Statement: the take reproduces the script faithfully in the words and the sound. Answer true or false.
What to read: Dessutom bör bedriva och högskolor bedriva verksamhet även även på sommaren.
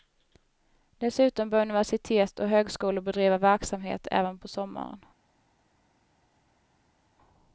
false